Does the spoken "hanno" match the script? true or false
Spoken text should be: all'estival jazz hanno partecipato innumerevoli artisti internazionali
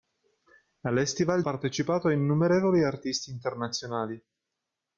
false